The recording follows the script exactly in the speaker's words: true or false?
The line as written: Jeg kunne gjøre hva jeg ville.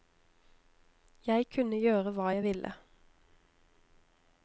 true